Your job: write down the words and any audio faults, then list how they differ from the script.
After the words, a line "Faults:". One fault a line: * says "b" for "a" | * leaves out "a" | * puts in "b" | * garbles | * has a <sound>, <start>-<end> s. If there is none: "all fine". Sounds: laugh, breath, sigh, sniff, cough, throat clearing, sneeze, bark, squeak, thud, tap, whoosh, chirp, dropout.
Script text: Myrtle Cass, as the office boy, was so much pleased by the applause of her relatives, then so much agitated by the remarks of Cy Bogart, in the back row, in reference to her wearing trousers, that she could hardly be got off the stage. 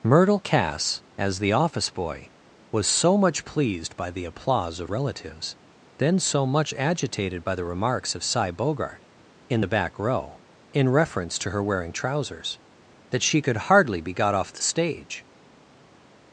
Myrtle Cass, as the office boy, was so much pleased by the applause of relatives, then so much agitated by the remarks of Cy Bogart, in the back row, in reference to her wearing trousers, that she could hardly be got off the stage.
Faults:
* leaves out "her"